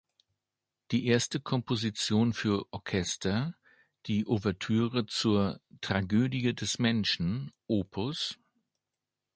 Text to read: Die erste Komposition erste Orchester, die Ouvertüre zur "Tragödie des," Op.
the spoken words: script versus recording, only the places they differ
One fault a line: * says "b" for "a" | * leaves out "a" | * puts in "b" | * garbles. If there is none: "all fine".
* says "für" for "erste"
* puts in "Menschen"